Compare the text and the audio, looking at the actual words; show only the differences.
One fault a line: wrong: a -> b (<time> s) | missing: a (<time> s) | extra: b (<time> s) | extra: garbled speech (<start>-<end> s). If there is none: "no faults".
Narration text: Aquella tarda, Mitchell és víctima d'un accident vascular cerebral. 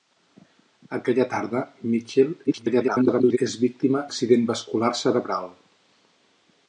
extra: garbled speech (2.5-3.4 s)
missing: d'un (4.0 s)